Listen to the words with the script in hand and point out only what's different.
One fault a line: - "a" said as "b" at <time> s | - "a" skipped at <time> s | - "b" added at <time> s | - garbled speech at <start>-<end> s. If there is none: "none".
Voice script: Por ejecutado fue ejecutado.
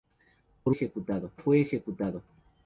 none